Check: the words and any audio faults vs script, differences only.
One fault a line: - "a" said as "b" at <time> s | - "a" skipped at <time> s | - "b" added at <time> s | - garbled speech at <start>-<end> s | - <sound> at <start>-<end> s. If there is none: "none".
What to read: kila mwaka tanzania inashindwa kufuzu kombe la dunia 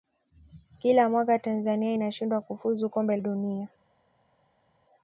- "la" skipped at 3.2 s